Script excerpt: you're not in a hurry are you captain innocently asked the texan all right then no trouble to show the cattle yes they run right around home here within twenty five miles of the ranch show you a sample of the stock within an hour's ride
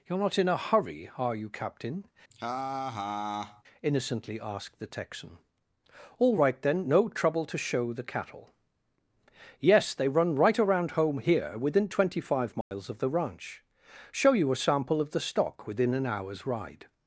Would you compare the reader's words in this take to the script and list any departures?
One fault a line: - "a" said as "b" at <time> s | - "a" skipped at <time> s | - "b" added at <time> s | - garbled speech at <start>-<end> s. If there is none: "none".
none